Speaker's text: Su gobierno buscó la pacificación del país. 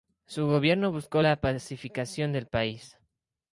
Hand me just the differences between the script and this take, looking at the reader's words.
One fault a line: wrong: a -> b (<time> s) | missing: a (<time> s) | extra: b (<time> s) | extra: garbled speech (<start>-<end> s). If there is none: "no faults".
no faults